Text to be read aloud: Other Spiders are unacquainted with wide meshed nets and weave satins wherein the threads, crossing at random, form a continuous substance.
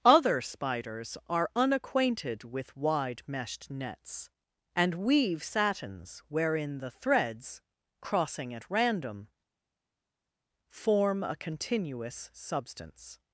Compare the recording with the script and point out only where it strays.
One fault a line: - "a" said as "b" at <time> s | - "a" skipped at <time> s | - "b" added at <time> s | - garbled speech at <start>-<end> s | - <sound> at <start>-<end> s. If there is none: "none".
none